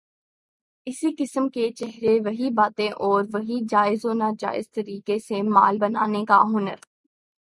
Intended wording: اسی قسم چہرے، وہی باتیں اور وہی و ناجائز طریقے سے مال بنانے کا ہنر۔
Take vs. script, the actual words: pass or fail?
fail